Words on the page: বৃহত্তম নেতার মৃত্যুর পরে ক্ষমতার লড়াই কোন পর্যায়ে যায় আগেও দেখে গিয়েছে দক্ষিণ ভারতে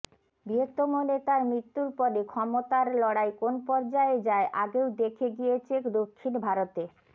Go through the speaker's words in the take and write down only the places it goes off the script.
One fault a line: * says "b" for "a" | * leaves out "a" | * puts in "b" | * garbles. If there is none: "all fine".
all fine